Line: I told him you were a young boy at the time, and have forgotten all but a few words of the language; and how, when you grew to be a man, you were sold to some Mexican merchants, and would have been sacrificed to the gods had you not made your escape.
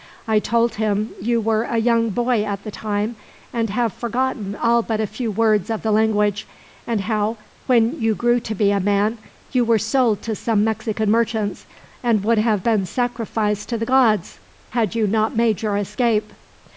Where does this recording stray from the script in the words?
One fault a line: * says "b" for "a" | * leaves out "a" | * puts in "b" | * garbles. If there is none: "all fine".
all fine